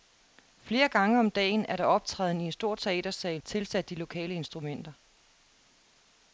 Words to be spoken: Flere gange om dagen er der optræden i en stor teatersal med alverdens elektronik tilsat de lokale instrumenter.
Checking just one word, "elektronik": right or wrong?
wrong